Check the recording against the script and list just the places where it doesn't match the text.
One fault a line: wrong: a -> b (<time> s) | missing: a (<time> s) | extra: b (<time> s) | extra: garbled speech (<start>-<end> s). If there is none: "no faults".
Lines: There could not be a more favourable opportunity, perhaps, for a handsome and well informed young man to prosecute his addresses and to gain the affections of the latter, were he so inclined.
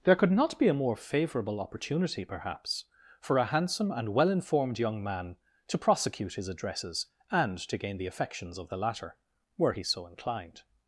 no faults